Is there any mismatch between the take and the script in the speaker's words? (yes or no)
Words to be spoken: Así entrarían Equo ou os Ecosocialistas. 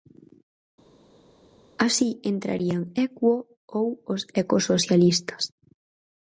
no